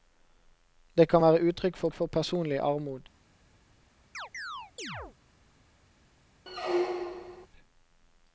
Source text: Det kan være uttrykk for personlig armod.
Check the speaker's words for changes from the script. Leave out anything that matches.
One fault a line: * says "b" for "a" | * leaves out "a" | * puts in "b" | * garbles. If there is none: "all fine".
* puts in "for"